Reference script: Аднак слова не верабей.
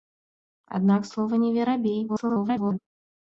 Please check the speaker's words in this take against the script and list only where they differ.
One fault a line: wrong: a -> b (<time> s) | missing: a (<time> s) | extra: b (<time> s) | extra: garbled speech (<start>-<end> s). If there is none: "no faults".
extra: garbled speech (2.1-2.8 s)